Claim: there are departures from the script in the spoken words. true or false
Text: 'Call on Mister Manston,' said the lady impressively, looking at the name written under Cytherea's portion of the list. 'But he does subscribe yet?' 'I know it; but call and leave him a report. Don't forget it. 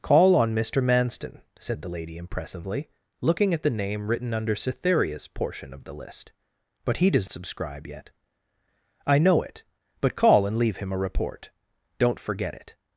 false